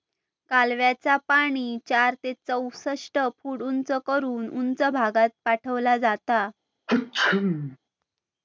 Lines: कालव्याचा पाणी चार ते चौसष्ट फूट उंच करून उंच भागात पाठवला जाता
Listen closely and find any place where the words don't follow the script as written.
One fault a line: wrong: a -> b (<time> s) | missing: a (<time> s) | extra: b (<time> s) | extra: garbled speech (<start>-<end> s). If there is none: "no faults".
no faults